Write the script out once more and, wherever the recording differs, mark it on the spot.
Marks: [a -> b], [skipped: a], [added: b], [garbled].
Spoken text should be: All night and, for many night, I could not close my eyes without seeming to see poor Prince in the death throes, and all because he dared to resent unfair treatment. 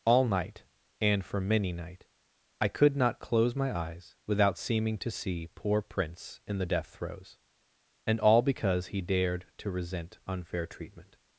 All night and, for many night, I could not close my eyes without seeming to see poor Prince in the death throes, and all because he dared to resent unfair treatment.